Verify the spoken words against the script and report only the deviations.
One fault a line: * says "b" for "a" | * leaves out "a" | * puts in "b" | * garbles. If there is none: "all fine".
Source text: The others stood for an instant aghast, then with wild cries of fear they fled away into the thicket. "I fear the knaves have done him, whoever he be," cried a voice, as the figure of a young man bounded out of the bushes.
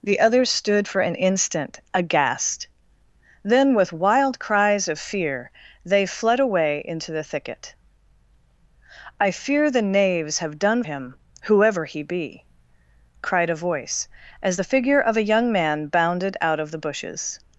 all fine